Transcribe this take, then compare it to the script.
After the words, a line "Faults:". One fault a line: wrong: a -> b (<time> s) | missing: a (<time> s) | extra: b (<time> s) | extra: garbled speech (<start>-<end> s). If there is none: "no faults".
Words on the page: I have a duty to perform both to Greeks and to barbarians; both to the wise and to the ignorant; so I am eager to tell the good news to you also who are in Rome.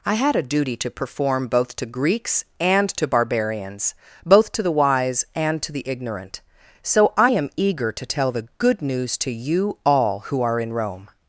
I had a duty to perform both to Greeks and to barbarians; both to the wise and to the ignorant; so I am eager to tell the good news to you all who are in Rome.
Faults:
wrong: have -> had (0.1 s)
wrong: also -> all (9.9 s)